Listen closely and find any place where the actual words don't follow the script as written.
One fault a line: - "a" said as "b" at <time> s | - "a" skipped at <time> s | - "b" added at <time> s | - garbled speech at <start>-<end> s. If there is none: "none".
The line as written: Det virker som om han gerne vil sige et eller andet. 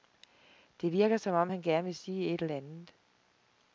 none